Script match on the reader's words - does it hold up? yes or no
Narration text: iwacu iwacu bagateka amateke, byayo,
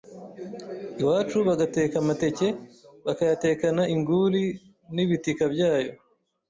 no